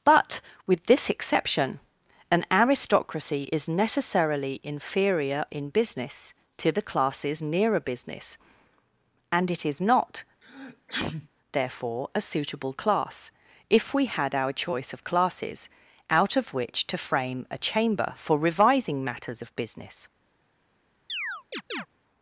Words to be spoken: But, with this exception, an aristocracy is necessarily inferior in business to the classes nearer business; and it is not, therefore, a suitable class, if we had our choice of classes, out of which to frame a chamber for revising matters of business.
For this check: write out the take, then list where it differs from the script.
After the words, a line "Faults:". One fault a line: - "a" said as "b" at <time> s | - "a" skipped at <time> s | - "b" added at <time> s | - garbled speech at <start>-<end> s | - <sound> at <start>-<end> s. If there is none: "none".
But, with this exception, an aristocracy is necessarily inferior in business to the classes nearer business; and it is not, therefore, a suitable class, if we had our choice of classes, out of which to frame a chamber for revising matters of business.
Faults:
- sneeze at 10.4-11.3 s
- chirp at 21.1-21.9 s